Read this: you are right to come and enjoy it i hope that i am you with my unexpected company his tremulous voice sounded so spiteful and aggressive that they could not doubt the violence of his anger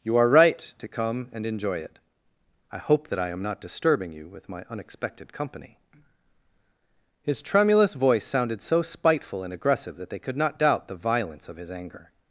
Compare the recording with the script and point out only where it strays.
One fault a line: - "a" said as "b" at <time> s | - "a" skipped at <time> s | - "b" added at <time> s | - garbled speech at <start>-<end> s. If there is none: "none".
- "not disturbing" added at 3.4 s